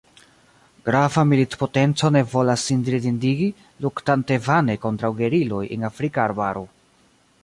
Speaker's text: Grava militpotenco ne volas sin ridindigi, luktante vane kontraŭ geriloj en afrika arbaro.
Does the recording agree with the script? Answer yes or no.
yes